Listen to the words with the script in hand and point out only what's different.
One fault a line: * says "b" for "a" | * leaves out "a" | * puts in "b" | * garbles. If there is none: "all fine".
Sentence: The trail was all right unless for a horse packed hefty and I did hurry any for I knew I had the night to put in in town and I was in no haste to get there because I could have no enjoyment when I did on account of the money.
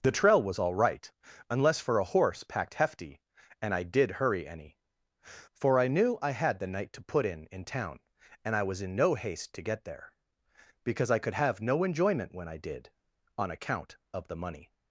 all fine